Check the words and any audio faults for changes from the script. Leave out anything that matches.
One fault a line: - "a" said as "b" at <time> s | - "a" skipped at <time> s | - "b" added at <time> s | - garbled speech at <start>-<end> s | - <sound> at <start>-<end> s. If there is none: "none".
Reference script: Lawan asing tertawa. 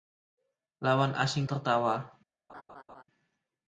- laugh at 2.5-3.0 s